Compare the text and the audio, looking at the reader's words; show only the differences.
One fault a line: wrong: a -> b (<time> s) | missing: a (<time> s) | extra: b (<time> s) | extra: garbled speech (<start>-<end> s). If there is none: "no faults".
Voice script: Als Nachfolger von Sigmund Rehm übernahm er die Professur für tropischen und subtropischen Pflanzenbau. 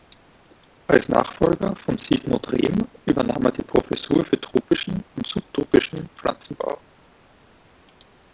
no faults